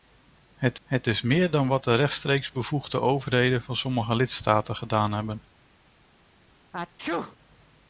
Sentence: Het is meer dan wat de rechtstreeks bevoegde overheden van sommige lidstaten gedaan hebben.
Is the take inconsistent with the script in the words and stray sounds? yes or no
yes